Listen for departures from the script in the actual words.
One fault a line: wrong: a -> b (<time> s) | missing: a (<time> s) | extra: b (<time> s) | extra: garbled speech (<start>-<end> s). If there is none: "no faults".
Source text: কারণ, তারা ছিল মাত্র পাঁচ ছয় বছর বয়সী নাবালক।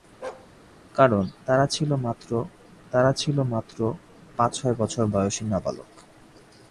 extra: তারা ছিল মাত্র (2.9 s)